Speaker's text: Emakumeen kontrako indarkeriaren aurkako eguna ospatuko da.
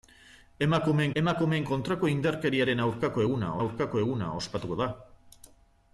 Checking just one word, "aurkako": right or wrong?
right